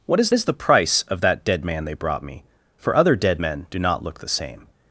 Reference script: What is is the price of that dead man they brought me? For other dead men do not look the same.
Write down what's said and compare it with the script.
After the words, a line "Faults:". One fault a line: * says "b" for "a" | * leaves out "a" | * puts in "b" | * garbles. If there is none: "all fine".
What is is the price of that dead man they brought me? For other dead men do not look the same.
Faults:
all fine